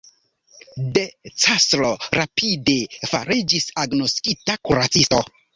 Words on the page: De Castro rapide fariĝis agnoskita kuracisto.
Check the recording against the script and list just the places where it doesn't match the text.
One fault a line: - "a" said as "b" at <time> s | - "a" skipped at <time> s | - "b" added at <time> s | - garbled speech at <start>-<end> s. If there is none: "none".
none